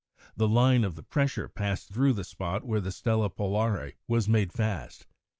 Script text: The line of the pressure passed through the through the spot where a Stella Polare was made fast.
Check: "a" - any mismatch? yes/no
yes